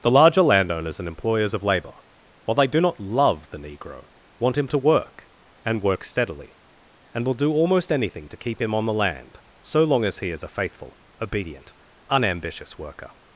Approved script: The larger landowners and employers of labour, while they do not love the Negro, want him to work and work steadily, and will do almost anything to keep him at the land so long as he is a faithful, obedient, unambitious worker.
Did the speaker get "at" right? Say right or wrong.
wrong